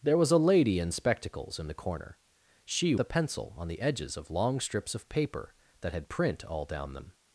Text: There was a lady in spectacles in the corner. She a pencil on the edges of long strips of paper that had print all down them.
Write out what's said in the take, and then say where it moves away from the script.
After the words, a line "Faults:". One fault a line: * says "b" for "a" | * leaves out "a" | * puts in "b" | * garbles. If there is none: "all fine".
There was a lady in spectacles in the corner. She a pencil on the edges of long strips of paper that had print all down them.
Faults:
all fine